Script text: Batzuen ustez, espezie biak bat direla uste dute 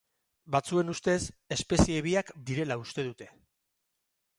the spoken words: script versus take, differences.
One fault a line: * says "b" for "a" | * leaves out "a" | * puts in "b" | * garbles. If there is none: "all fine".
* leaves out "bat"